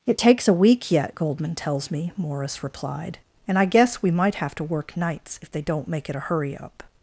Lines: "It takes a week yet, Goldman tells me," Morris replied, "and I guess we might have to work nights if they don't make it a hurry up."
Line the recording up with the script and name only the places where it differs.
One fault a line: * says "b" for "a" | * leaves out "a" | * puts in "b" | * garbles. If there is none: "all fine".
all fine